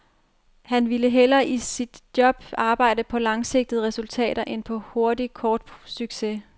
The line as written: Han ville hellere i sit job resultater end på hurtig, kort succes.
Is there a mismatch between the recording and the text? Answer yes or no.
yes